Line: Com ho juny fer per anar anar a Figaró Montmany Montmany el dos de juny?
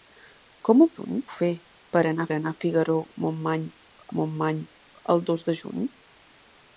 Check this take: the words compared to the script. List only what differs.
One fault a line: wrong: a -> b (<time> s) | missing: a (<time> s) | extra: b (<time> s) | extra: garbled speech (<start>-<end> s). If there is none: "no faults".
no faults